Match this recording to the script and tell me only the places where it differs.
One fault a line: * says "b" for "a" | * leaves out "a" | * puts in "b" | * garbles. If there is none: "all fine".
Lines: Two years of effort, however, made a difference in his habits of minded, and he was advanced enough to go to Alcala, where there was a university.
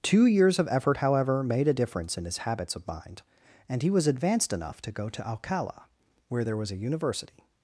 * says "mind" for "minded"